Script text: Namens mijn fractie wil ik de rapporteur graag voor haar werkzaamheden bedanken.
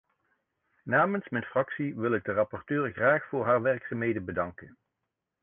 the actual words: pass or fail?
pass